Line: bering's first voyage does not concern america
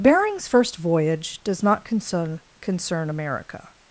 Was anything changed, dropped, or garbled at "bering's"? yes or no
no